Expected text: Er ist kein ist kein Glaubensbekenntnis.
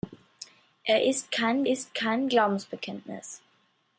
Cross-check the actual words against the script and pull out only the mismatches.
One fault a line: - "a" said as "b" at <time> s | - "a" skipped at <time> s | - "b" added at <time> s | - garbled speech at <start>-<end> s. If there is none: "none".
none